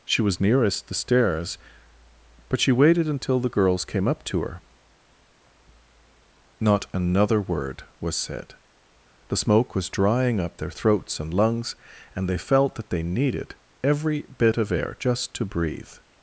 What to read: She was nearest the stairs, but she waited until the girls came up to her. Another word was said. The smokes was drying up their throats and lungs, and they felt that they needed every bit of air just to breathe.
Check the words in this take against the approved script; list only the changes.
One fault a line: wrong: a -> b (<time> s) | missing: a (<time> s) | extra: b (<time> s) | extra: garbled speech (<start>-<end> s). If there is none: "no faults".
extra: Not (6.6 s)
wrong: smokes -> smoke (9.4 s)